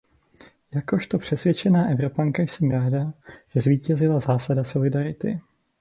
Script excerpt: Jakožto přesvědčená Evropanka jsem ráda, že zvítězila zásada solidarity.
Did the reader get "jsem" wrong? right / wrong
right